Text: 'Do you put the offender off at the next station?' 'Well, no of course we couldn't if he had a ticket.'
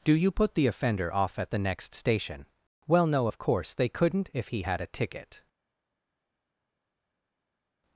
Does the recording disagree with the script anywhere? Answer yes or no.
yes